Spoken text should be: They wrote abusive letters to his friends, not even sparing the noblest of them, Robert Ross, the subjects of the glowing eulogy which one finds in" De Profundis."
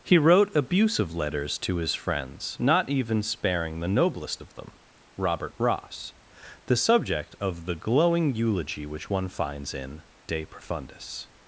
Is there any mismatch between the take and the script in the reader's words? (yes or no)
yes